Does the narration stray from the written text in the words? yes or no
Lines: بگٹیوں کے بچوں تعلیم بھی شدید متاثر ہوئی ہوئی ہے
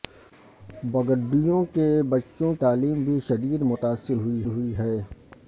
no